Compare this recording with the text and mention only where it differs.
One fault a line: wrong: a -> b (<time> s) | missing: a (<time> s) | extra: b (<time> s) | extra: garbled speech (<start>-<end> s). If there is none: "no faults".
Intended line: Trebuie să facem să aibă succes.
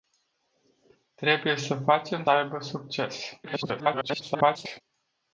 missing: să (2.2 s)
extra: garbled speech (3.4-4.8 s)